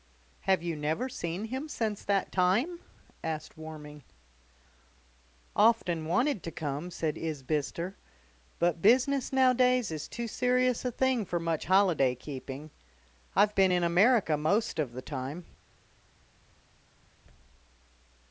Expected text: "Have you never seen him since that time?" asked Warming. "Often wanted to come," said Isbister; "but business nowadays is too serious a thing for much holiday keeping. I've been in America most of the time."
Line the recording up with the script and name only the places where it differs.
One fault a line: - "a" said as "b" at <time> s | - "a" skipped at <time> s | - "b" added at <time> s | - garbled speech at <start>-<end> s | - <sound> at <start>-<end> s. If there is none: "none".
none